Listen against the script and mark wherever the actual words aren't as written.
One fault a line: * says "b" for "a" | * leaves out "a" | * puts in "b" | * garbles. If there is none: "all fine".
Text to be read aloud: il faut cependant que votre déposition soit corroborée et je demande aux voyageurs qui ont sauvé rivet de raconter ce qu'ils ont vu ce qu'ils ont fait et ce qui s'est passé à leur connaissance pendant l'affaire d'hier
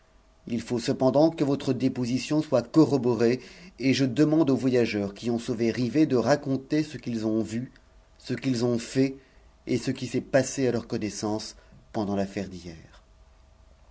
all fine